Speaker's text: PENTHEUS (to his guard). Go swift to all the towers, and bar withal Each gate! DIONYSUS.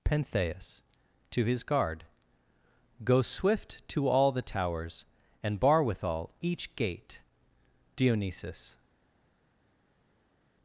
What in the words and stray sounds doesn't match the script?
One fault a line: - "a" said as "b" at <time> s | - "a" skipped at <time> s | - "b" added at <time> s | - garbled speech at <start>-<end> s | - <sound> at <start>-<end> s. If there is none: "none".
none